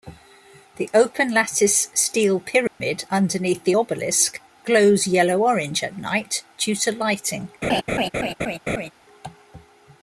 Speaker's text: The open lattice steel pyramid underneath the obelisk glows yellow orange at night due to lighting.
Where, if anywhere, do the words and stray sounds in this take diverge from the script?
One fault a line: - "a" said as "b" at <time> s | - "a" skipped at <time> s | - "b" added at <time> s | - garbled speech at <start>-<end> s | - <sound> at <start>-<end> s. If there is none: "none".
- dropout at 2.7-2.8 s
- laugh at 7.6-8.9 s